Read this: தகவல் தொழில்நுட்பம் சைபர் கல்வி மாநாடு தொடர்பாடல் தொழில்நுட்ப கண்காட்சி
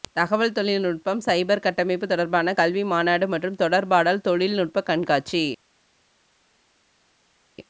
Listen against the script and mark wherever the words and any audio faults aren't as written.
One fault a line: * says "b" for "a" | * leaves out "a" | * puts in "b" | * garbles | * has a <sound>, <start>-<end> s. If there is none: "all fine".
* puts in "கட்டமைப்பு தொடர்பான"
* puts in "மற்றும்"